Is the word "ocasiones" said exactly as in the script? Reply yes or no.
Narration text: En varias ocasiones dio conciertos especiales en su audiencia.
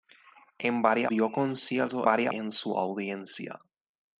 no